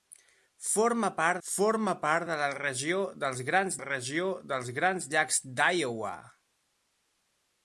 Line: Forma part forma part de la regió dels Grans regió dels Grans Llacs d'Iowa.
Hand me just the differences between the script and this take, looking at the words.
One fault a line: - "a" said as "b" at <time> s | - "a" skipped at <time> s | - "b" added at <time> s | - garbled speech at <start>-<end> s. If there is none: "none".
none